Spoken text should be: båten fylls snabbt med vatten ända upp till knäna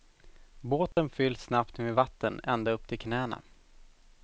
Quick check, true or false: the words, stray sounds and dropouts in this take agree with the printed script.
false